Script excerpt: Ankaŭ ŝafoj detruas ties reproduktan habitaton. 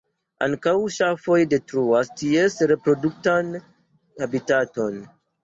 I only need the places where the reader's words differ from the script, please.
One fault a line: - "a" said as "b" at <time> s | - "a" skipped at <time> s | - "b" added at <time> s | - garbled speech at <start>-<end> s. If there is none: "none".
none